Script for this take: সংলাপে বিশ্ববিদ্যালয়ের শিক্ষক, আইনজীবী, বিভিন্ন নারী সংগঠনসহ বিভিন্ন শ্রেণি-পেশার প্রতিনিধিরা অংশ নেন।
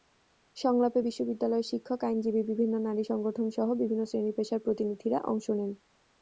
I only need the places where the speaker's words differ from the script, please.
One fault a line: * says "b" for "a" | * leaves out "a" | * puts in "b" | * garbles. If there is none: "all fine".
all fine